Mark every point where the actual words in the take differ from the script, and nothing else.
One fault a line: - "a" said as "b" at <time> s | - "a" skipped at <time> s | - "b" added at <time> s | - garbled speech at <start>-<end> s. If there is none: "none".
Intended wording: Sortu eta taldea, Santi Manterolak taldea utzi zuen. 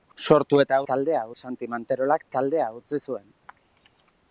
none